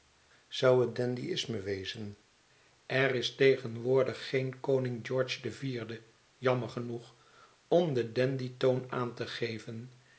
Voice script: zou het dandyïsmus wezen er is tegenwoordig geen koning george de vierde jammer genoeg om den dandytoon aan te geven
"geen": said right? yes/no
yes